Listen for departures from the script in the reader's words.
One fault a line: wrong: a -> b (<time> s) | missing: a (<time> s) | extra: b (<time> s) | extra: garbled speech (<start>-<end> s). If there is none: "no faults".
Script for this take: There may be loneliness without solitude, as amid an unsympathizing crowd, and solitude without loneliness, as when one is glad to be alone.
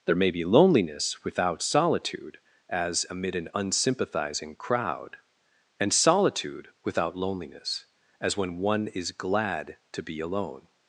no faults